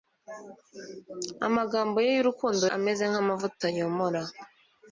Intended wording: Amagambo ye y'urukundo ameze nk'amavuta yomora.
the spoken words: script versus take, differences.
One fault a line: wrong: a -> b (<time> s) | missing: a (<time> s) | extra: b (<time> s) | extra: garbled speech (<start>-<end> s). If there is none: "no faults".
no faults